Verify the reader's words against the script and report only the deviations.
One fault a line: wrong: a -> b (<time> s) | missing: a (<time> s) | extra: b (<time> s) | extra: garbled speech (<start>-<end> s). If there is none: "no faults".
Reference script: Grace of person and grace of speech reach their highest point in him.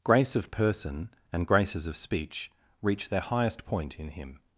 wrong: grace -> graces (1.4 s)